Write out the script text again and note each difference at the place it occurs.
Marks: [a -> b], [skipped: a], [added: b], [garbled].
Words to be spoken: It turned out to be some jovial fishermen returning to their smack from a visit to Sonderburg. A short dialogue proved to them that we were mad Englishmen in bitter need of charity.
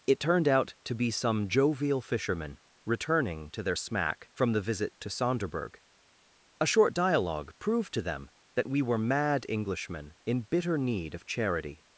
It turned out to be some jovial fishermen returning to their smack from [a -> the] visit to Sonderburg. A short dialogue proved to them that we were mad Englishmen in bitter need of charity.